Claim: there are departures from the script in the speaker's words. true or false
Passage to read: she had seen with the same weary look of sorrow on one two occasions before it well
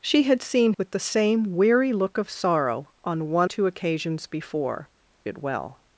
false